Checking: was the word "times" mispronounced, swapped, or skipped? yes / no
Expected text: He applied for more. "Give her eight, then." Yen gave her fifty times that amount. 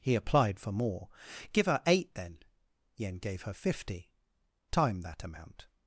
yes